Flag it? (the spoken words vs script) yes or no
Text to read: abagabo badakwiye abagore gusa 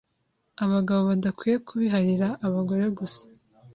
yes